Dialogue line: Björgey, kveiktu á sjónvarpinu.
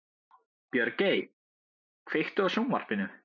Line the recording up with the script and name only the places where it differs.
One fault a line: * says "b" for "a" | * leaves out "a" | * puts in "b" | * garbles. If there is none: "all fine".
all fine